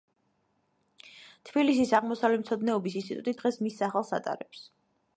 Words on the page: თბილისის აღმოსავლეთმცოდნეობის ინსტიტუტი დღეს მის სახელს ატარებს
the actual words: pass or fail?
pass